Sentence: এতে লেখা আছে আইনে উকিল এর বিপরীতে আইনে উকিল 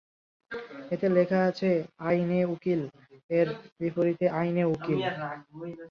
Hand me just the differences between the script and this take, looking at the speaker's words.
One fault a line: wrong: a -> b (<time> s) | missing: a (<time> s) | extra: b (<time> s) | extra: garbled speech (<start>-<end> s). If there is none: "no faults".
no faults